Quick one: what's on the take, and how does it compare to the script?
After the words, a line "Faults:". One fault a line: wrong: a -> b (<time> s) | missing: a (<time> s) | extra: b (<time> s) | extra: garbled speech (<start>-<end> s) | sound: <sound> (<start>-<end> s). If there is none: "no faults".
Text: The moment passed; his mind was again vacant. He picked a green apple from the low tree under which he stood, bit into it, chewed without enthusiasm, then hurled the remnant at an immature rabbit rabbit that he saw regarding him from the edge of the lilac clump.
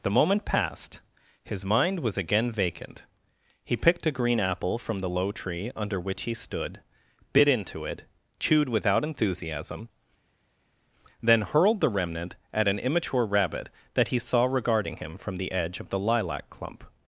The moment passed; his mind was again vacant. He picked a green apple from the low tree under which he stood, bit into it, chewed without enthusiasm, then hurled the remnant at an immature rabbit that he saw regarding him from the edge of the lilac clump.
Faults:
missing: rabbit (13.7 s)